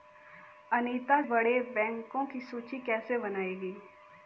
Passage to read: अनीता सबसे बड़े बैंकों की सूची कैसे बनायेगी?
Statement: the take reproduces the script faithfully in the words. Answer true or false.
false